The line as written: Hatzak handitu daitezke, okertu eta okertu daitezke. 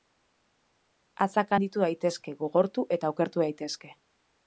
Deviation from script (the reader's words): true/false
true